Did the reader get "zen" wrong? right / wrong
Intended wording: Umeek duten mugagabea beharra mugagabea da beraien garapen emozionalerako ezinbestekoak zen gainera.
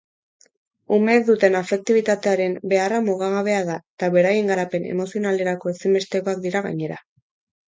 wrong